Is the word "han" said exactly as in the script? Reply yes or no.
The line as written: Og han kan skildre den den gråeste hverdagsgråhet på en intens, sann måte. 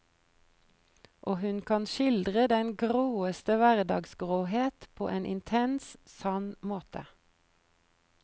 no